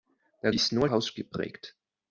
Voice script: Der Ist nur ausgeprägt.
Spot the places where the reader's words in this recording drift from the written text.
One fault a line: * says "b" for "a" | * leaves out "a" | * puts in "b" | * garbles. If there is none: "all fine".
all fine